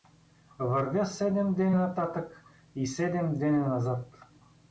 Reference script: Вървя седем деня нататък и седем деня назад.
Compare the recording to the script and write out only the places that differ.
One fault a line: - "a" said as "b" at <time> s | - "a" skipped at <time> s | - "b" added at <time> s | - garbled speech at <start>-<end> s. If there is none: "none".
none